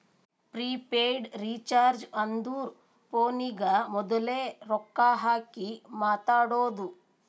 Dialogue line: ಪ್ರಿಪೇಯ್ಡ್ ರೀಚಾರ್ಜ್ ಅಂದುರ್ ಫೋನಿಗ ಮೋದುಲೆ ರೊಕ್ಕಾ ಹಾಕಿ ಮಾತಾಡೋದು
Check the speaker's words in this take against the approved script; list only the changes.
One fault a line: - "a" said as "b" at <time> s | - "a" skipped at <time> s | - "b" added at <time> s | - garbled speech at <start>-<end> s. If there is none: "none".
none